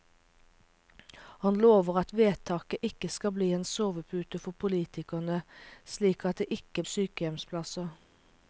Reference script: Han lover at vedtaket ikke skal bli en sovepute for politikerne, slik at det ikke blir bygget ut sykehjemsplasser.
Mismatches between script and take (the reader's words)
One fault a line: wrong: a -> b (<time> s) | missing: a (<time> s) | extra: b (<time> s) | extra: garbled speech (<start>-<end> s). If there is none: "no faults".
missing: blir bygget ut (6.8 s)